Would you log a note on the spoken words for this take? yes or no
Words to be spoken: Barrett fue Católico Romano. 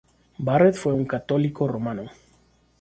yes